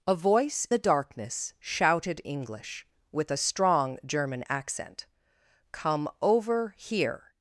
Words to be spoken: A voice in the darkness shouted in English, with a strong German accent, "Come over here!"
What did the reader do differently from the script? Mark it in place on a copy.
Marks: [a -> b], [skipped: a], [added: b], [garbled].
A voice [skipped: in] the darkness shouted [skipped: in] English, with a strong German accent, "Come over here!"